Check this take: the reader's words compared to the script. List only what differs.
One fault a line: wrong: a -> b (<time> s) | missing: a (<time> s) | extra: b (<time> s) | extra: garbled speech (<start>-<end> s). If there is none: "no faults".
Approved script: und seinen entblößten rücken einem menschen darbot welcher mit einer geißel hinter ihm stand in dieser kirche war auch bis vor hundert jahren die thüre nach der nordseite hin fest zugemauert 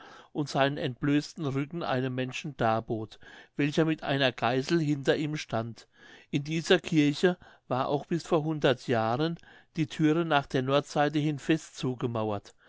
no faults